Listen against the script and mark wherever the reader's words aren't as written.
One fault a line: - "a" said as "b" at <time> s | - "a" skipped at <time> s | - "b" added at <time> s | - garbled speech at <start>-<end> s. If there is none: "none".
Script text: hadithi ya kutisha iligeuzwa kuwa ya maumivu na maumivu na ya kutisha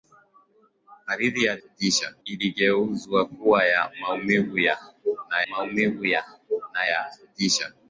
none